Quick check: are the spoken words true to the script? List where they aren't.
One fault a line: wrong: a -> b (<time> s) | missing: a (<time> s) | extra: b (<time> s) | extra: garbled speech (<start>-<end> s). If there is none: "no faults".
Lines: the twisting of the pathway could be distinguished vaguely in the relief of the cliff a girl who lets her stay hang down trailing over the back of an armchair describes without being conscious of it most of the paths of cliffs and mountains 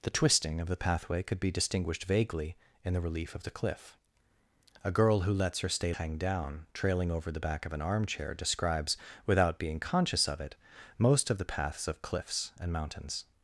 no faults